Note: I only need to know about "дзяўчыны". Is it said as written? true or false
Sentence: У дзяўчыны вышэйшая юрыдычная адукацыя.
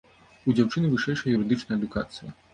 true